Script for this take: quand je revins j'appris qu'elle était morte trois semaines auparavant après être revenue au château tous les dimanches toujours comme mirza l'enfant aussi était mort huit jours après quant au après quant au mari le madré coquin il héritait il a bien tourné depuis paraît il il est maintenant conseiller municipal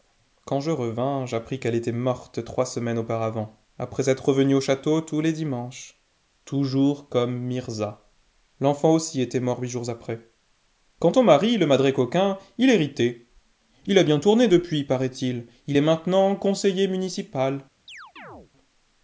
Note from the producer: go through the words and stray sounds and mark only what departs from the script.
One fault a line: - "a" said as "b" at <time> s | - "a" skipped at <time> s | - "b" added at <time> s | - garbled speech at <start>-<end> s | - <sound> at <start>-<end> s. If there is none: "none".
- "après quant au" skipped at 11.2 s
- chirp at 17.9-18.5 s